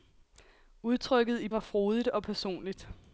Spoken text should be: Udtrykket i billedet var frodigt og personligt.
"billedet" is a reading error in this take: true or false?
true